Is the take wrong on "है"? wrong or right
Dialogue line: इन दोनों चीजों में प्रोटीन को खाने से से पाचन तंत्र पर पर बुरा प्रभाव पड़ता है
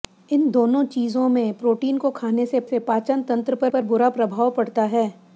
right